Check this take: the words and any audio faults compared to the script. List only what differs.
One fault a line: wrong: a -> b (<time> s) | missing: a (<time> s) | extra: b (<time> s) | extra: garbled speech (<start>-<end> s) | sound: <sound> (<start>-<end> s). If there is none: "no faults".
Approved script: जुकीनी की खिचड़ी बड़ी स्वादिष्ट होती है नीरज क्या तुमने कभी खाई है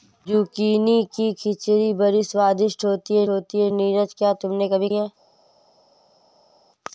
extra: होती है (3.3 s)
missing: खाई (4.9 s)